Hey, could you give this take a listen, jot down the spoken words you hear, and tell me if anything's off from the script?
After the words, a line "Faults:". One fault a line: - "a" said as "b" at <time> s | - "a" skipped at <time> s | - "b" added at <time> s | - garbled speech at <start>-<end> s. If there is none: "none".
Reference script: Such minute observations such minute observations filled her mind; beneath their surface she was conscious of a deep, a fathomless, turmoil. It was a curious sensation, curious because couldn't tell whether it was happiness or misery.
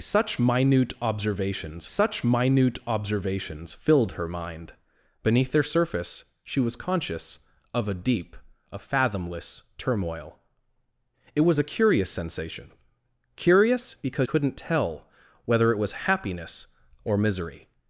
Such minute observations such minute observations filled her mind; beneath their surface she was conscious of a deep, a fathomless, turmoil. It was a curious sensation, curious because couldn't tell whether it was happiness or misery.
Faults:
none